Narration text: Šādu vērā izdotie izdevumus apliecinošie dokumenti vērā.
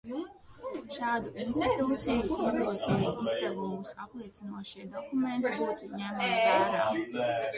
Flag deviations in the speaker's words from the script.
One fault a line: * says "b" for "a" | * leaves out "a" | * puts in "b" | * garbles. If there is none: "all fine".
* says "institūciju" for "vērā"
* puts in "būtu ņemami"